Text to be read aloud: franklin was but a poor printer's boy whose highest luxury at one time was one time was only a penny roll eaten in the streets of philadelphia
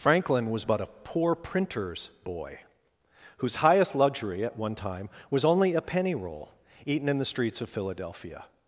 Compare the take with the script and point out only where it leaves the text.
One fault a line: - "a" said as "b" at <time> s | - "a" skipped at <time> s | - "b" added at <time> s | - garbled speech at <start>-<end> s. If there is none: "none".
- "one time was" skipped at 5.4 s